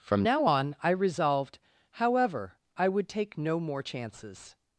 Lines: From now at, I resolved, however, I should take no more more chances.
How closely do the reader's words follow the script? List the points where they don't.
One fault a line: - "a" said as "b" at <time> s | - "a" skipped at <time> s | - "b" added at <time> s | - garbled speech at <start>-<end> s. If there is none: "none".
- "at" said as "on" at 0.4 s
- "should" said as "would" at 2.9 s
- "more" skipped at 3.8 s